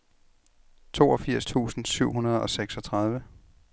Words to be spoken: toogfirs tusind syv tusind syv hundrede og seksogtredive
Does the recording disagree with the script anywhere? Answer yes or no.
yes